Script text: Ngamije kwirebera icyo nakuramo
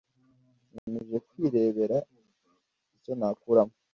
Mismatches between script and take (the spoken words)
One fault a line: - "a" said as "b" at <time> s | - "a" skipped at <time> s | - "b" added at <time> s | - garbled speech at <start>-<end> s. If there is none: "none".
none